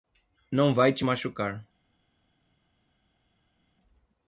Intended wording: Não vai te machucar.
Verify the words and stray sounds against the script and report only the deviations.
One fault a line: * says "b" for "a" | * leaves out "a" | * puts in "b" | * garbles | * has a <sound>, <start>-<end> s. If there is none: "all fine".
all fine